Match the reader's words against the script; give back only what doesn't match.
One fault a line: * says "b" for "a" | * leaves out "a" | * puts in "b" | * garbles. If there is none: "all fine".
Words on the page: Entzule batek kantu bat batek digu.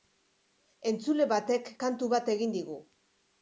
* says "egin" for "batek"